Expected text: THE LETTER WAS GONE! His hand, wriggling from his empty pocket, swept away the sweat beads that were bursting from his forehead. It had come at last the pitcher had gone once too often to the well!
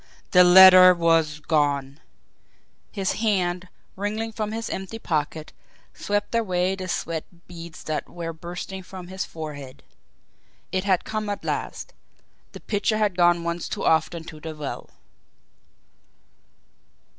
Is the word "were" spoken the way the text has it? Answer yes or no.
yes